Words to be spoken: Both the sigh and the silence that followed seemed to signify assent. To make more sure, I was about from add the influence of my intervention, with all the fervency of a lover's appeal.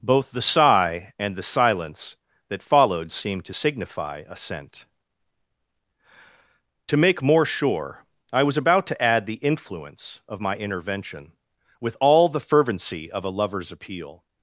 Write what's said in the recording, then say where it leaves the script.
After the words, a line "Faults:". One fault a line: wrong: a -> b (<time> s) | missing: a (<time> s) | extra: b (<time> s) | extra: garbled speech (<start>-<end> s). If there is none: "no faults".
Both the sigh and the silence that followed seemed to signify assent. To make more sure, I was about to add the influence of my intervention, with all the fervency of a lover's appeal.
Faults:
wrong: from -> to (8.9 s)